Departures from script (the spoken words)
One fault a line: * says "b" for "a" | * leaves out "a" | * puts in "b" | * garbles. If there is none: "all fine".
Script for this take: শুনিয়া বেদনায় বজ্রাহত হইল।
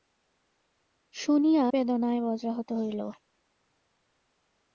all fine